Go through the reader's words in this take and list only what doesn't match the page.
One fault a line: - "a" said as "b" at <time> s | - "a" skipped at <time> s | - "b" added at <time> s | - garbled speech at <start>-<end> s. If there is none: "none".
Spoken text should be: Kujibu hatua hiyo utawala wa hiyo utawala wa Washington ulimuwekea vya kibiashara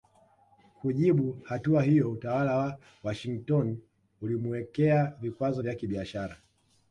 - "hiyo utawala wa" skipped at 2.8 s
- "vikwazo" added at 5.2 s